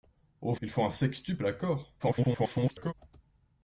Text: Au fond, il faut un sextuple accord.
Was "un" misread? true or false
false